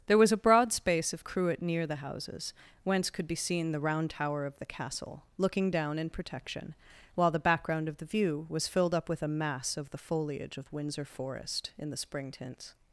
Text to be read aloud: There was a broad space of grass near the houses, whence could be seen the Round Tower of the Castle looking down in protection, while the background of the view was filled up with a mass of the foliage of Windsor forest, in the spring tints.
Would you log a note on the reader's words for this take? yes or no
yes